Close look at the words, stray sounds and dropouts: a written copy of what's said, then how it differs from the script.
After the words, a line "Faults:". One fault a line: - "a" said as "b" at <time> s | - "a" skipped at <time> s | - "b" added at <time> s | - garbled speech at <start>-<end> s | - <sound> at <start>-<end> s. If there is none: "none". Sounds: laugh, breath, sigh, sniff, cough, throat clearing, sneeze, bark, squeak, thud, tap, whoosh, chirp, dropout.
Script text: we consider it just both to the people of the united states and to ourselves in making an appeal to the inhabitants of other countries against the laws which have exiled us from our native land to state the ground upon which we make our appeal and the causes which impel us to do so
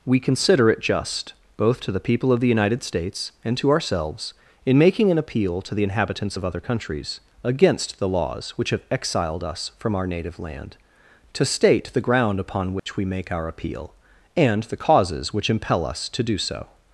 we consider it just both to the people of the united states and to ourselves in making an appeal to the inhabitants of other countries against the laws which have exiled us from our native land to state the ground upon which we make our appeal and the causes which impel us to do so
Faults:
- dropout at 12.8-12.9 s